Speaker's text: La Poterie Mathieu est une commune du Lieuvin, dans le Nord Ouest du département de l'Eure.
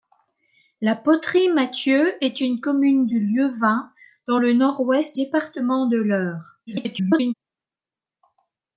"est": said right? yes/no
yes